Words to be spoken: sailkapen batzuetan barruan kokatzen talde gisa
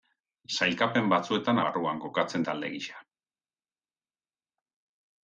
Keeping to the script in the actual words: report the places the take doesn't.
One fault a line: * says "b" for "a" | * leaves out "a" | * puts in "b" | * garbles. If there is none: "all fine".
all fine